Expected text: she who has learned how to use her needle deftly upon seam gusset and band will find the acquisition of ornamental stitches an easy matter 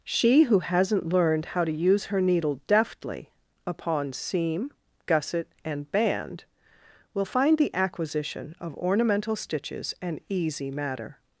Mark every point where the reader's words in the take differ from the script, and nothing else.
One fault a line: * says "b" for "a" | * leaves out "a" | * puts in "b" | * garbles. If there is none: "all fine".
* says "hasn't" for "has"